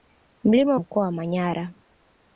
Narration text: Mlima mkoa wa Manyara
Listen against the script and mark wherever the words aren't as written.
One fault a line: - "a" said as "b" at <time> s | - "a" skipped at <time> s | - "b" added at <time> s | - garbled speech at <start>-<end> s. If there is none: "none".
none